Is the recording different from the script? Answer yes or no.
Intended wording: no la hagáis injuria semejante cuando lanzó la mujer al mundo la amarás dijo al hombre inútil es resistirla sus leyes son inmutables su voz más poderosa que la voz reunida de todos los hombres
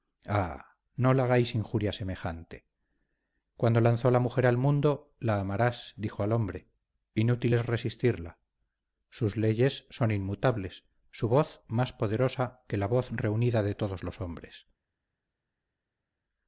no